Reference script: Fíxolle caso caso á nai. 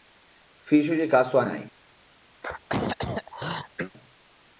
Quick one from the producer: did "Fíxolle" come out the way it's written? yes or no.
yes